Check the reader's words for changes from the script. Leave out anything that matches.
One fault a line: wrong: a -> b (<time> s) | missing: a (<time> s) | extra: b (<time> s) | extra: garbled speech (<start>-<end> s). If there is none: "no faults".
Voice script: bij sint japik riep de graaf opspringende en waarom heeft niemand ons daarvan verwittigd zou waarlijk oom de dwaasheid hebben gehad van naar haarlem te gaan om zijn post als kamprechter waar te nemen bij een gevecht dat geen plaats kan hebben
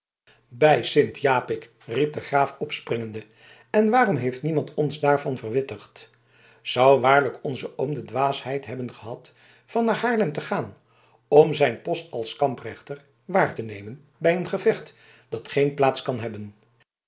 extra: onze (7.4 s)